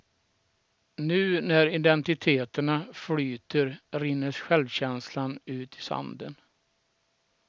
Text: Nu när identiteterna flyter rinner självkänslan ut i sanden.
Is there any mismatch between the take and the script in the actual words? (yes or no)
no